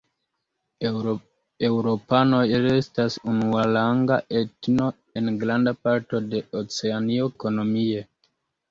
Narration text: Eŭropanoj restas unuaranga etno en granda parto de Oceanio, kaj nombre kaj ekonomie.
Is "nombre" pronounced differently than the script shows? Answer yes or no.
yes